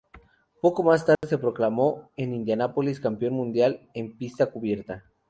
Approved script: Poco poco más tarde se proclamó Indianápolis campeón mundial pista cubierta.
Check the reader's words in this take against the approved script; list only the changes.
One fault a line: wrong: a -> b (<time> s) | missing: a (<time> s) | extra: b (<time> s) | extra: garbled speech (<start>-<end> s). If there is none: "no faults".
missing: poco (0.8 s)
extra: en (2.1 s)
extra: en (3.9 s)